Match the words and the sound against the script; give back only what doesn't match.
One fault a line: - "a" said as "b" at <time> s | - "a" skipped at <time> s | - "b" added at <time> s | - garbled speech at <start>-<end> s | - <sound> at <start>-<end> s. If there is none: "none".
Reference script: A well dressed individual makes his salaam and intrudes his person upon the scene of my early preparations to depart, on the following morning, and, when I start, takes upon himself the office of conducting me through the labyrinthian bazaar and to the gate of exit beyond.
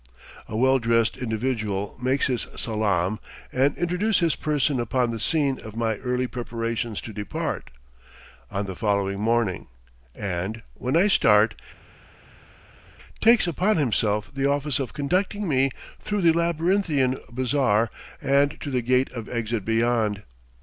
none